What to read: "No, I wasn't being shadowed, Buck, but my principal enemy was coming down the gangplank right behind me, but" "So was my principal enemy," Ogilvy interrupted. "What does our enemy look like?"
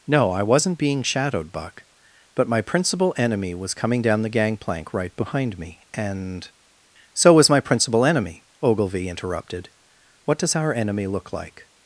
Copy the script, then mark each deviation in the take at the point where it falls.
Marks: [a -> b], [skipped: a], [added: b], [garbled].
"No, I wasn't being shadowed, Buck, but my principal enemy was coming down the gangplank right behind me, [but" -> and] "So was my principal enemy," Ogilvy interrupted. "What does our enemy look like?"